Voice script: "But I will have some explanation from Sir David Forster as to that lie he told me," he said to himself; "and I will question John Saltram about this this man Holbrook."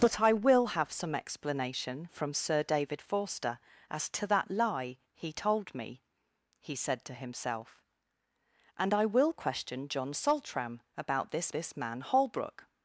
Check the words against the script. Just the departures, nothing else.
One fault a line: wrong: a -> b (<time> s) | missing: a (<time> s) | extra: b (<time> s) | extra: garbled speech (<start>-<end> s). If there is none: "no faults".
no faults